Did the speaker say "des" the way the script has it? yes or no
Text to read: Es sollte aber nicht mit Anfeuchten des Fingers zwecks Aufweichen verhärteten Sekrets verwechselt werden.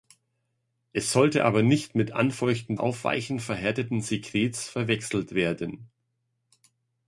no